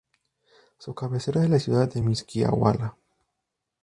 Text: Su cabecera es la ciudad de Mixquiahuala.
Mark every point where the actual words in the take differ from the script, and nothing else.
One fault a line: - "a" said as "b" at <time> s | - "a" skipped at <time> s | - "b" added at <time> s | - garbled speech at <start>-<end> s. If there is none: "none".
none